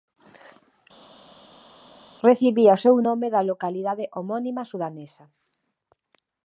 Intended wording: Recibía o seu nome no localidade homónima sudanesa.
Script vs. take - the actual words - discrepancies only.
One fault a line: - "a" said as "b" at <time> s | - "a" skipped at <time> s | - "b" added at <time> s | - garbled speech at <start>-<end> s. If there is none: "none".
- "no" said as "da" at 3.3 s